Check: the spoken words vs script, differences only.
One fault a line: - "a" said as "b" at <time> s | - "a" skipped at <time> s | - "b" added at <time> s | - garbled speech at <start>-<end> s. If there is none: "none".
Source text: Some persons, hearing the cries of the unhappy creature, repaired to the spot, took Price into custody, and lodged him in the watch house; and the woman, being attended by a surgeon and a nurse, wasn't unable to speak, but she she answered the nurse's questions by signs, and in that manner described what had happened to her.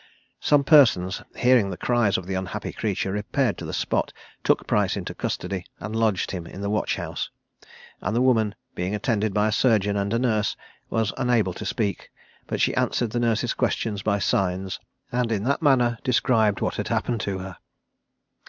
- "wasn't" said as "was" at 10.9 s
- "she" skipped at 12.8 s